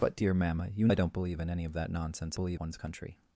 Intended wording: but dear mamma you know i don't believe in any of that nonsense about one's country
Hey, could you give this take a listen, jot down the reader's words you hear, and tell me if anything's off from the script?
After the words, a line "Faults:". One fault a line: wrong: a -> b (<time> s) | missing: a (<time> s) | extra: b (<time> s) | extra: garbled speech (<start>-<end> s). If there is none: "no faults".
but dear mamma you i don't believe in any of that nonsense believe one's country
Faults:
missing: know (0.9 s)
wrong: about -> believe (2.3 s)